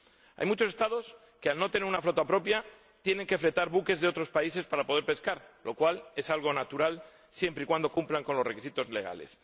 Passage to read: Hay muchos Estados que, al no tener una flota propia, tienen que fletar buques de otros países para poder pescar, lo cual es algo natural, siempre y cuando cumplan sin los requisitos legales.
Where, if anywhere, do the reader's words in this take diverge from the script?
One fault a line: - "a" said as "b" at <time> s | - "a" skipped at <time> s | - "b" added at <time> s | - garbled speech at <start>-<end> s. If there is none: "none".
- "sin" said as "con" at 8.2 s